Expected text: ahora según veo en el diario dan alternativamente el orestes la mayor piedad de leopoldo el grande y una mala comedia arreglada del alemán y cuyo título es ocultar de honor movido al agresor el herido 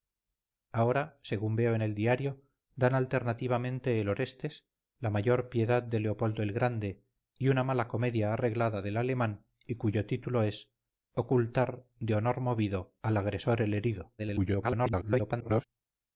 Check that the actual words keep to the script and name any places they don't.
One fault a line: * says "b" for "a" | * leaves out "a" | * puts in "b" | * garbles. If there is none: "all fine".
* garbles